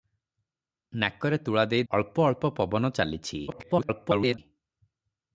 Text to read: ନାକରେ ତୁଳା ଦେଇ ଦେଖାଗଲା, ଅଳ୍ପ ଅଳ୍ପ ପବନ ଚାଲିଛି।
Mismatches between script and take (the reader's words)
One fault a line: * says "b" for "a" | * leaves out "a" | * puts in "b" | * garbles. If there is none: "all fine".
* leaves out "ଦେଖାଗଲା"
* garbles